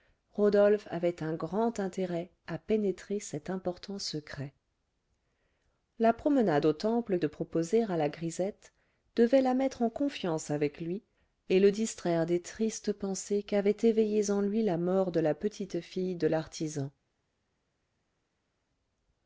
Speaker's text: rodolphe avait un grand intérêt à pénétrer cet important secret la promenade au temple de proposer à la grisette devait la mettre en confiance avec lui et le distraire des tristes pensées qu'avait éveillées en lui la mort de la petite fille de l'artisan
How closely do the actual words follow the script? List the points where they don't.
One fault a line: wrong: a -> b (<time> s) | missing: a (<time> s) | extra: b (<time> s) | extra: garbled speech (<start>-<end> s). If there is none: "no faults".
no faults